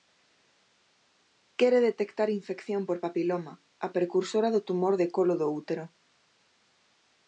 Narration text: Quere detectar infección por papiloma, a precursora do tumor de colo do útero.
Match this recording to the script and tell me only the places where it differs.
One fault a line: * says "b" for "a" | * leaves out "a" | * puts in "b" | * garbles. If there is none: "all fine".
all fine